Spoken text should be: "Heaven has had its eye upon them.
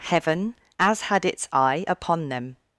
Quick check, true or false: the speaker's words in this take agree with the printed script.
false